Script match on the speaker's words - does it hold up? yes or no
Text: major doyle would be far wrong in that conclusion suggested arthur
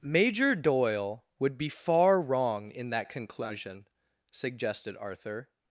yes